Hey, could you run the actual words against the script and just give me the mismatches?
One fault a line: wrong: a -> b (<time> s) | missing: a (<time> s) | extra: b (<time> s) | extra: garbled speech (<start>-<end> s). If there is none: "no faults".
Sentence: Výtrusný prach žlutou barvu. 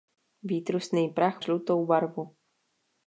no faults